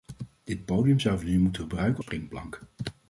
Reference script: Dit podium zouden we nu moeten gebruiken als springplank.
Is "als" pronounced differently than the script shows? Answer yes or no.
yes